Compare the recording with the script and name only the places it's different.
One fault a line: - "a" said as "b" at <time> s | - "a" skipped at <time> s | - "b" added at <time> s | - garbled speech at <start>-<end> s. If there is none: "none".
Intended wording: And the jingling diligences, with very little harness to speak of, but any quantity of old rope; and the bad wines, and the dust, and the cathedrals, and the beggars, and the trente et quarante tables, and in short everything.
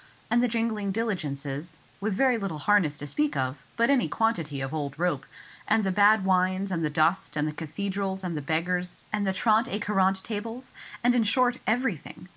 none